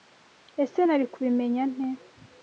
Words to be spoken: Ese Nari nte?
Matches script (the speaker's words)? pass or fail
fail